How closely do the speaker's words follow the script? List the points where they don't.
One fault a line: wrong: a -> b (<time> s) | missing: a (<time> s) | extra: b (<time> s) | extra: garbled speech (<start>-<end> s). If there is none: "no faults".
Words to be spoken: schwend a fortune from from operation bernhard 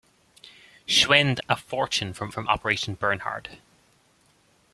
no faults